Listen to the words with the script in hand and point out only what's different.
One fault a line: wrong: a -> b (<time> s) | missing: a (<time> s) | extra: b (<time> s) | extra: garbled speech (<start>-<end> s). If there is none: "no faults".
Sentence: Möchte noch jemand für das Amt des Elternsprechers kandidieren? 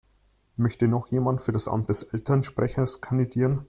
no faults